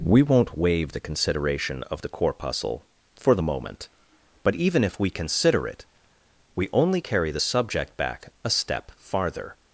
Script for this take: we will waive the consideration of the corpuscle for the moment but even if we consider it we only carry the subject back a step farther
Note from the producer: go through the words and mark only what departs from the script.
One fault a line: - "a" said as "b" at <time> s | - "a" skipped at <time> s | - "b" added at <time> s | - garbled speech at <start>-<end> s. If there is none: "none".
- "will" said as "won't" at 0.2 s